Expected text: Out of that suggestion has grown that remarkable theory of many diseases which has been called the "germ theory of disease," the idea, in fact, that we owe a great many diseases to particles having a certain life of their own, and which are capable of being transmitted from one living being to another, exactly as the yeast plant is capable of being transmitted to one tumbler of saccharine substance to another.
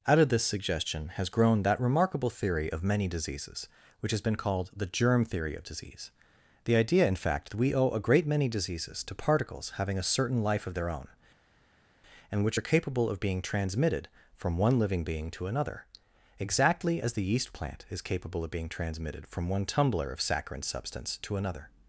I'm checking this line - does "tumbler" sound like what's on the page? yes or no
yes